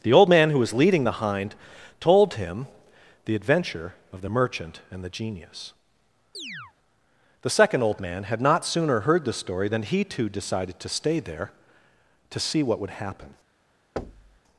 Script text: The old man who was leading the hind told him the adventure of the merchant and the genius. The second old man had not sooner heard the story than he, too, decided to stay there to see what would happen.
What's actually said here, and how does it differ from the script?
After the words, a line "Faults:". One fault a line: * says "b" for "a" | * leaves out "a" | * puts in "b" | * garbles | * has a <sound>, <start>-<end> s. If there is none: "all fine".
The old man who was leading the hind told him the adventure of the merchant and the genius. The second old man had not sooner heard the story than he, too, decided to stay there to see what would happen.
Faults:
* has a chirp, 6.3-6.7 s
* has a thud, 14.0-14.4 s